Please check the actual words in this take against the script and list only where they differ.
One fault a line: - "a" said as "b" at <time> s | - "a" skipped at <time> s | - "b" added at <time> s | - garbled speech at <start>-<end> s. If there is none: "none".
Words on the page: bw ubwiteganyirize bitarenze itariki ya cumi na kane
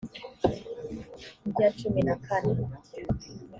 - "ubwiteganyirize bitarenze itariki" skipped at 1.6 s